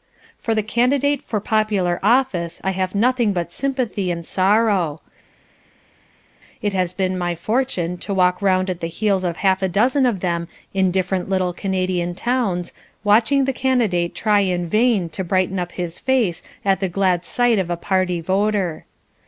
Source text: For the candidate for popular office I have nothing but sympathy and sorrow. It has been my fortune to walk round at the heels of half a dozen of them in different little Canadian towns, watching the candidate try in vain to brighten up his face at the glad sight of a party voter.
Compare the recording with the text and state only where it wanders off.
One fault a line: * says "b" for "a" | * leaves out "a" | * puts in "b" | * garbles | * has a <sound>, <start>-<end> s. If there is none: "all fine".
all fine